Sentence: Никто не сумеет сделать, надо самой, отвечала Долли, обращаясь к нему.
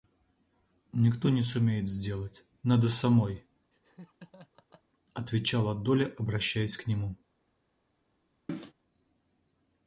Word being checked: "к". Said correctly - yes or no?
yes